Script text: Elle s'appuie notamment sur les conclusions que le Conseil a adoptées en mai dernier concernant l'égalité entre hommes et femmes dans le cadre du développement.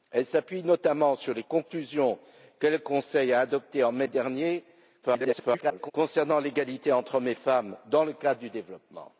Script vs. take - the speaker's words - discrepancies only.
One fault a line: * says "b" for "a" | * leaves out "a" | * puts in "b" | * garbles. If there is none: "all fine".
* garbles